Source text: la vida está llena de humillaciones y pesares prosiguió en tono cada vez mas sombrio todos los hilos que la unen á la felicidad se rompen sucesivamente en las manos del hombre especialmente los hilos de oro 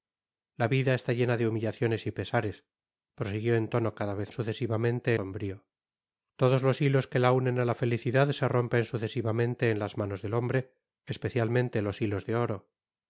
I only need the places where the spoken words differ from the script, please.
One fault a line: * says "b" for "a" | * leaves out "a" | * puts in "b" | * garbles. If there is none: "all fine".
* says "sucesivamente" for "mas"